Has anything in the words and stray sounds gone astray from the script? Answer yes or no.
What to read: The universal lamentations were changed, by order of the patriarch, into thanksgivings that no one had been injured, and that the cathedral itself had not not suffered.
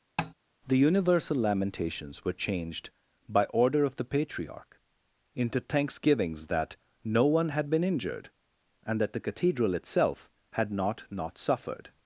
yes